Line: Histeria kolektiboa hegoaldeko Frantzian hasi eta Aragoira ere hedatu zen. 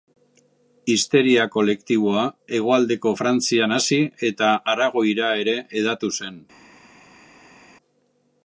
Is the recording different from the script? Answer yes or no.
no